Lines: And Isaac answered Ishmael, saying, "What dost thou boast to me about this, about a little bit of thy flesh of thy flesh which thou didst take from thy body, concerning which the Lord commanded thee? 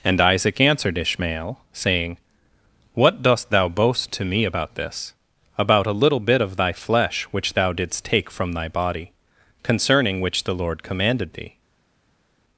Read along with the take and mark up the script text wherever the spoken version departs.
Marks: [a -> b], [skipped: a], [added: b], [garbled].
And Isaac answered Ishmael, saying, "What dost thou boast to me about this, about a little bit of thy flesh [skipped: of thy flesh] which thou didst take from thy body, concerning which the Lord commanded thee?